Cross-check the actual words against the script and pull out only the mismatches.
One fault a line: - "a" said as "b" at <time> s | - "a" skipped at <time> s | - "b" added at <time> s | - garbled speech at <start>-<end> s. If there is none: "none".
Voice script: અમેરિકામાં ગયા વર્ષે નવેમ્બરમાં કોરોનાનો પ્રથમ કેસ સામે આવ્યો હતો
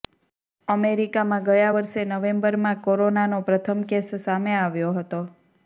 none